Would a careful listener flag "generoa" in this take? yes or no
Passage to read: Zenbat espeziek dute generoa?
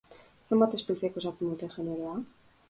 no